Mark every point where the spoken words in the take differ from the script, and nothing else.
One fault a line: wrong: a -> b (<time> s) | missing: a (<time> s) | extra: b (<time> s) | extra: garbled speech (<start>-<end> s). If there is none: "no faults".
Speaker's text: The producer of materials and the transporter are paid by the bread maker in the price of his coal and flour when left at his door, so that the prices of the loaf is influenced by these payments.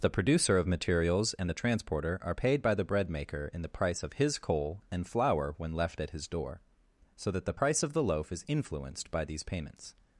wrong: prices -> price (7.6 s)